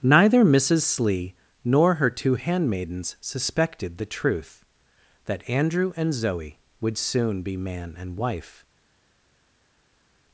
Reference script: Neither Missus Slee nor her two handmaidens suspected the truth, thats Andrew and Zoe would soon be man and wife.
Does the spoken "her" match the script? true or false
true